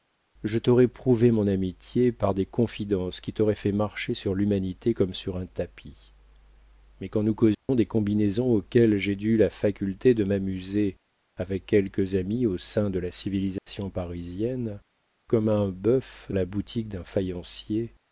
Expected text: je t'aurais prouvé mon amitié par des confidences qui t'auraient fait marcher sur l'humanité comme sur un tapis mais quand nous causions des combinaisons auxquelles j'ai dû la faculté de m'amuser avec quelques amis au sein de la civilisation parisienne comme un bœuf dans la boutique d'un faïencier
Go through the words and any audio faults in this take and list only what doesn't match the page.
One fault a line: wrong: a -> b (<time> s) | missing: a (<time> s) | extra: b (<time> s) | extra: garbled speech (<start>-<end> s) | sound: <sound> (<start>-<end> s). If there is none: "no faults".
sound: dropout (7.5-7.7 s)
sound: dropout (13.6-13.7 s)
missing: dans (16.3 s)